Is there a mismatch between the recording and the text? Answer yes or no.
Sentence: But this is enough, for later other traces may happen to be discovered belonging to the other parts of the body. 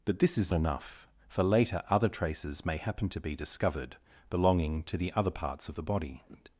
no